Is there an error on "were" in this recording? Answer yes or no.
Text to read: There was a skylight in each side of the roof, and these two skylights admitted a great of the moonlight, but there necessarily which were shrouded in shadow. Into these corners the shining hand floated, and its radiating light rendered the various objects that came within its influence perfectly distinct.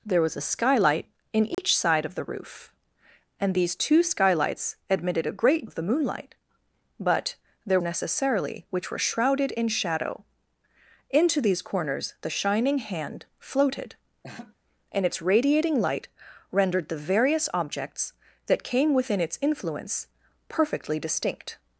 no